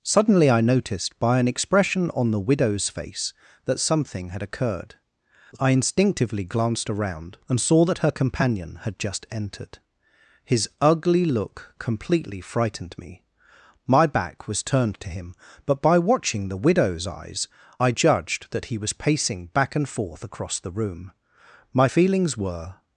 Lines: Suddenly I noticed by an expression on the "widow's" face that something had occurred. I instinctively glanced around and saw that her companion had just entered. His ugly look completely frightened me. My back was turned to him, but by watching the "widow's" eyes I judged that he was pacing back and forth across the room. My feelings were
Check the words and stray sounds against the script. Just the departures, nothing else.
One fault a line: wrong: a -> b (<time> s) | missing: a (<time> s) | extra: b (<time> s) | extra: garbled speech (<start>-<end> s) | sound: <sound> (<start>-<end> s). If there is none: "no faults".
no faults